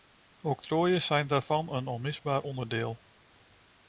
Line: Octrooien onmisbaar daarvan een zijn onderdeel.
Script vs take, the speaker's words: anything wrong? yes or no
yes